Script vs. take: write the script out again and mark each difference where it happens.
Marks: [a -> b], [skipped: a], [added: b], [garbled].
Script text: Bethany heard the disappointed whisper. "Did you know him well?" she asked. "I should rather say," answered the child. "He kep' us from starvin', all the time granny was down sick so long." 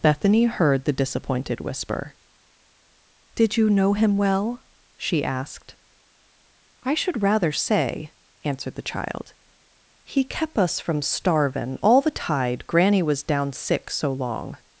Bethany heard the disappointed whisper. "Did you know him well?" she asked. "I should rather say," answered the child. "He kep' us from starvin', all the [time -> tide] granny was down sick so long."